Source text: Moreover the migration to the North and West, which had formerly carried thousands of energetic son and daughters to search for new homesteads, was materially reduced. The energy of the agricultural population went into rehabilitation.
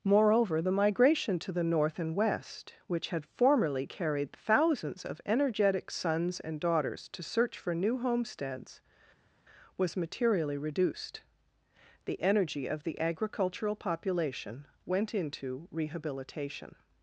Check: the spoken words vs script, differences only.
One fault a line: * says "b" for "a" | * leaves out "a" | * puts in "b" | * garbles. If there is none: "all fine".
* says "sons" for "son"